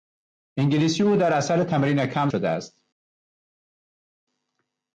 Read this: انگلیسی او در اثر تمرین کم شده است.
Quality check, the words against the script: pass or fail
pass